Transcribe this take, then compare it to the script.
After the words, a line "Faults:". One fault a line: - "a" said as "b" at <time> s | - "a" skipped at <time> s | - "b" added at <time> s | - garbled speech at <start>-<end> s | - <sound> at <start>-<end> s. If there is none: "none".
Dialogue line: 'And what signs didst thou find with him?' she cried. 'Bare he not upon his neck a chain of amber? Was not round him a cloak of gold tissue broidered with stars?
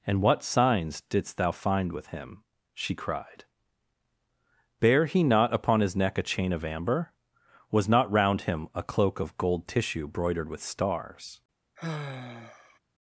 'And what signs didst thou find with him?' she cried. 'Bare he not upon his neck a chain of amber? Was not round him a cloak of gold tissue broidered with stars?
Faults:
- sigh at 11.8-12.8 s